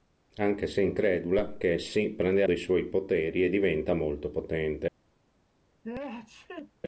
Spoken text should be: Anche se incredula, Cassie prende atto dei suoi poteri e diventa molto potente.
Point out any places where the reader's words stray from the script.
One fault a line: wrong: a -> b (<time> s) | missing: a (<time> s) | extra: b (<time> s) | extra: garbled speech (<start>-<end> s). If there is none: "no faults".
missing: atto (2.4 s)